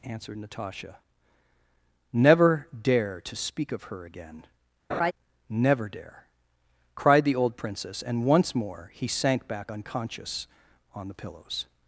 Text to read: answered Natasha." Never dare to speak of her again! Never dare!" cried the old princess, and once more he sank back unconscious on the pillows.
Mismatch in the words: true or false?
false